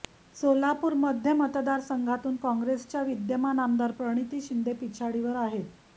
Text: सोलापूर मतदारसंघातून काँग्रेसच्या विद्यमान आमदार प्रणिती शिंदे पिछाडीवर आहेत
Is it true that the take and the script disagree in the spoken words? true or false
true